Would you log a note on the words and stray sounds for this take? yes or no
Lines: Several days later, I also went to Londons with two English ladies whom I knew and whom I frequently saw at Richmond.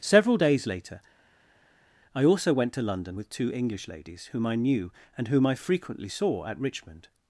yes